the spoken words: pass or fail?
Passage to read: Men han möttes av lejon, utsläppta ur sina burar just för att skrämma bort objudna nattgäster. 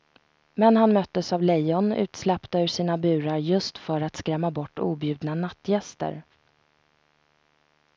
pass